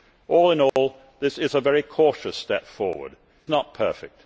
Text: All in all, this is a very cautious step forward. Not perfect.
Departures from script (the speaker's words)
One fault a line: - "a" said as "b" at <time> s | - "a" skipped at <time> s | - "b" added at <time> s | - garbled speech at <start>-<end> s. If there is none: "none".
none